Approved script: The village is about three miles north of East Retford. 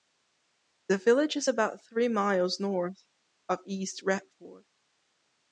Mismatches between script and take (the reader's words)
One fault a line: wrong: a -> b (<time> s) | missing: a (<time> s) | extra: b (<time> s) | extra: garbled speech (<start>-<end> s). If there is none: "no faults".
no faults